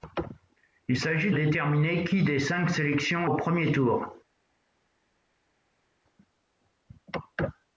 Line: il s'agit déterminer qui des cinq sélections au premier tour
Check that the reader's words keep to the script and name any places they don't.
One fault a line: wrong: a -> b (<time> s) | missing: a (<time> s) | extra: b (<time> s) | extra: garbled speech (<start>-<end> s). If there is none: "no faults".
no faults